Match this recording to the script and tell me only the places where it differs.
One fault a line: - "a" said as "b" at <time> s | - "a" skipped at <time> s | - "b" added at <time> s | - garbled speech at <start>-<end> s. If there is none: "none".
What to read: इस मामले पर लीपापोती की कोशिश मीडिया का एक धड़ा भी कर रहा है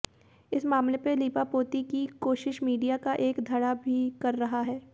none